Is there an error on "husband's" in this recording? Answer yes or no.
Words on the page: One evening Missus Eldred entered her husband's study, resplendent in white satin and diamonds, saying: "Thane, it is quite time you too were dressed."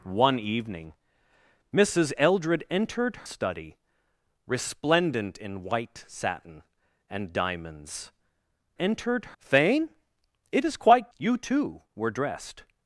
yes